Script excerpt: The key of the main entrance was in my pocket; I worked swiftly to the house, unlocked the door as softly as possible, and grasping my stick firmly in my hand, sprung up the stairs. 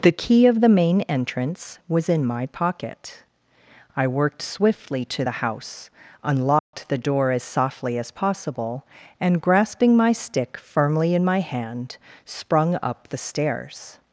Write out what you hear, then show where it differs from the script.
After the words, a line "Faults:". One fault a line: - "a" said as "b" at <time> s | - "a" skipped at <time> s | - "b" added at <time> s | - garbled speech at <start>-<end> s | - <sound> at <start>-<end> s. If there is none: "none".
The key of the main entrance was in my pocket; I worked swiftly to the house, unlocked the door as softly as possible, and grasping my stick firmly in my hand, sprung up the stairs.
Faults:
- dropout at 6.6-6.7 s